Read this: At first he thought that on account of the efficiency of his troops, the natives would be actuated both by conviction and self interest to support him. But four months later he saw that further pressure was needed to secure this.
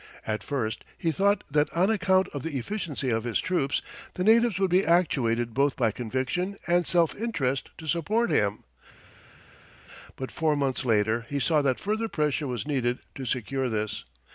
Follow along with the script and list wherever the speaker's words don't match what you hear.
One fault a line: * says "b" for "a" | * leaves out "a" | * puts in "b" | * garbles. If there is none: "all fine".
all fine